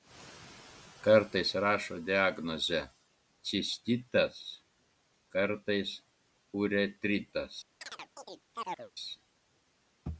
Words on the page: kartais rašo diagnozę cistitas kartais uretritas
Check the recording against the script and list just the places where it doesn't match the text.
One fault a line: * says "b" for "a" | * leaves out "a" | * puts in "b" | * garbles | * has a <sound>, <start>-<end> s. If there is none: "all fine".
* has a chirp, 7.8-8.9 s